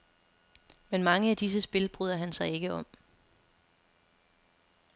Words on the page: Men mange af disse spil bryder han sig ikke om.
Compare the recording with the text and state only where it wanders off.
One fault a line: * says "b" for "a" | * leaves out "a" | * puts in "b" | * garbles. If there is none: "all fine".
all fine